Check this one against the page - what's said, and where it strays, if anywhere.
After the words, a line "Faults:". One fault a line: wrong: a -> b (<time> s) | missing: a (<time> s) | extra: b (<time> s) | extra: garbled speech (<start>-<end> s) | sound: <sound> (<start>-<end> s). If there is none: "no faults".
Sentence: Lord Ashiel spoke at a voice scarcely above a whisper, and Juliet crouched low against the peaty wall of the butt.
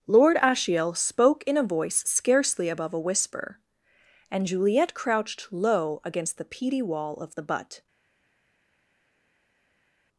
Lord Ashiel spoke in a voice scarcely above a whisper, and Juliet crouched low against the peaty wall of the butt.
Faults:
wrong: at -> in (1.4 s)